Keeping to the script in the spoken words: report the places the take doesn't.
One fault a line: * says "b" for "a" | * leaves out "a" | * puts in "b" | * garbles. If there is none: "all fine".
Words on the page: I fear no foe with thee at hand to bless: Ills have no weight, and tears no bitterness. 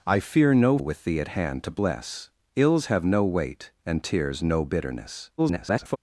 * leaves out "foe"
* garbles